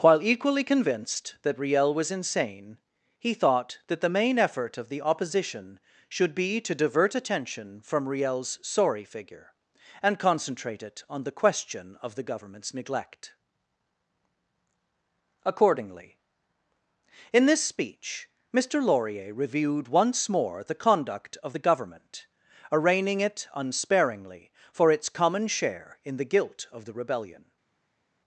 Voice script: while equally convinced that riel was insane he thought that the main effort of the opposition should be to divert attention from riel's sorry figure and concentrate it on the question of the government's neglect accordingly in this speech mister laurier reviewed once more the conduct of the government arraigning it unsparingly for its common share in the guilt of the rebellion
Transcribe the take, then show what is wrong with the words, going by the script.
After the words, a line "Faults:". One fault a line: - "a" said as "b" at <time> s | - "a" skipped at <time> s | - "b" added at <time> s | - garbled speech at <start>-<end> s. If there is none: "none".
while equally convinced that riel was insane he thought that the main effort of the opposition should be to divert attention from riel's sorry figure and concentrate it on the question of the government's neglect accordingly in this speech mister laurier reviewed once more the conduct of the government arraigning it unsparingly for its common share in the guilt of the rebellion
Faults:
none